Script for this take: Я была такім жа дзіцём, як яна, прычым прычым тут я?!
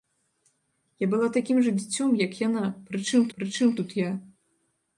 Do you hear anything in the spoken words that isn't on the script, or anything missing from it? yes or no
no